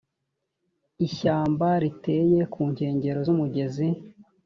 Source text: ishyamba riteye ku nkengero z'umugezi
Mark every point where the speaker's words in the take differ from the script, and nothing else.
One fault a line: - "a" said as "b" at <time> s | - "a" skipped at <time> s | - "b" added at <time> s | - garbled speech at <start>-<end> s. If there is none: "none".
none